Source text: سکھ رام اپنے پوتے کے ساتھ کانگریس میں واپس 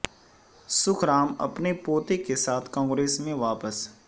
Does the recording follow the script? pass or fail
pass